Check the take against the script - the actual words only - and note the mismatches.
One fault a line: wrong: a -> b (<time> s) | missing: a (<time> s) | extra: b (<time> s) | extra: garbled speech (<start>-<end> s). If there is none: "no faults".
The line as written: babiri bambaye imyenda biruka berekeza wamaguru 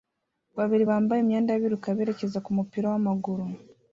extra: kumupira (2.4 s)